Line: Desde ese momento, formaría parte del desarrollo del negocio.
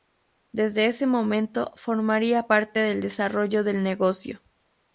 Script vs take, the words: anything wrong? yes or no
no